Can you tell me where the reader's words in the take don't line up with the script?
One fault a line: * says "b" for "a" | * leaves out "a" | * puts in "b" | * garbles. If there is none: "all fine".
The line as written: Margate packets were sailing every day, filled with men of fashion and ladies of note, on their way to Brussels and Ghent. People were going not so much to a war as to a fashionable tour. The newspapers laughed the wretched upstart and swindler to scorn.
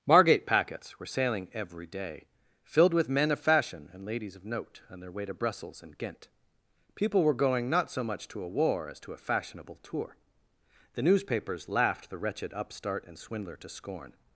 all fine